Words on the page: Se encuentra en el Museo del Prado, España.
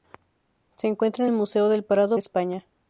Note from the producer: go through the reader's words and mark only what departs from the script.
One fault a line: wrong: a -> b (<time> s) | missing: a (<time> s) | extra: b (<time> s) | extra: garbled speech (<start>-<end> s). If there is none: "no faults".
no faults